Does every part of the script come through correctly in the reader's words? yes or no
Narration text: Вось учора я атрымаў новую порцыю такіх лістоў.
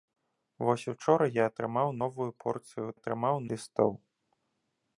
no